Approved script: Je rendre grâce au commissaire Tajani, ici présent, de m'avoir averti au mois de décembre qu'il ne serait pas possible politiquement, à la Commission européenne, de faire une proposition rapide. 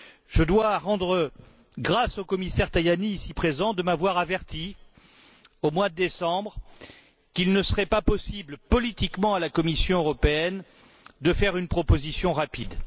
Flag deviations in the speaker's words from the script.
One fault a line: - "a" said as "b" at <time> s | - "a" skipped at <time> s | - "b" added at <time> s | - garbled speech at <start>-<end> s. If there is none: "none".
- "dois" added at 0.4 s